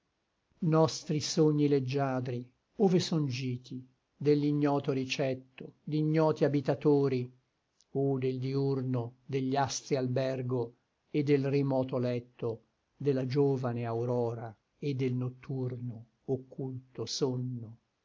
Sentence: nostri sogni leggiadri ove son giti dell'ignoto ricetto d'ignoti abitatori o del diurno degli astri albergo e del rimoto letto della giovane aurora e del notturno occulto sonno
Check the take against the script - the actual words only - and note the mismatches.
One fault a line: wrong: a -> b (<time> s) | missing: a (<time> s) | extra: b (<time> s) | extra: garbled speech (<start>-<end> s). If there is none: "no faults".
no faults